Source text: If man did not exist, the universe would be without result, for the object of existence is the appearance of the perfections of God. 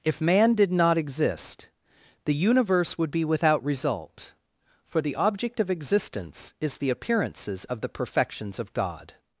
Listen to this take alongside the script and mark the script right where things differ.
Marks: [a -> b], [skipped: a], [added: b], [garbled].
If man did not exist, the universe would be without result, for the object of existence is the [appearance -> appearances] of the perfections of God.